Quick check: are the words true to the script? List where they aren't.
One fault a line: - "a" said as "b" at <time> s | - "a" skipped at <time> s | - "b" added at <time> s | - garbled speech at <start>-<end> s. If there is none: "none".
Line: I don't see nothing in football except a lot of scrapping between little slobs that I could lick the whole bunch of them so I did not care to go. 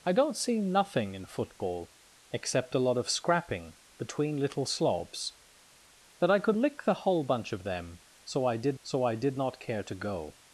- "so I did" added at 8.8 s